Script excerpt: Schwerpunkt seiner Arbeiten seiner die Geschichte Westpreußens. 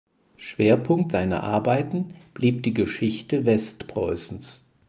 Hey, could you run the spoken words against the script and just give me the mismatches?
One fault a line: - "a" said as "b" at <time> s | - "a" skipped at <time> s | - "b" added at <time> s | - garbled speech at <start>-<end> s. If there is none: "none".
- "seiner" said as "blieb" at 2.3 s